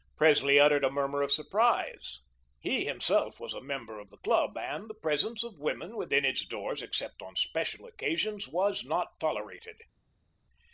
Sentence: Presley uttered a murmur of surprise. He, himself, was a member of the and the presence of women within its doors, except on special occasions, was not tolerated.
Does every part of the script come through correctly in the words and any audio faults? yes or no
no